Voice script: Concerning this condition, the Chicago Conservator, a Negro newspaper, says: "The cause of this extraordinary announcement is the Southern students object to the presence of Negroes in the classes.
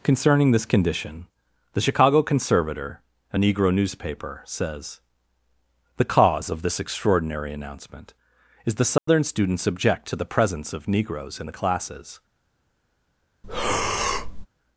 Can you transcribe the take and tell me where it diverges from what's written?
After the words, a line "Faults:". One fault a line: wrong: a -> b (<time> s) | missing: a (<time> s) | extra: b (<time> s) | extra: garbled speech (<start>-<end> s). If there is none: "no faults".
Concerning this condition, the Chicago Conservator, a Negro newspaper, says: "The cause of this extraordinary announcement is the Southern students object to the presence of Negroes in the classes.
Faults:
no faults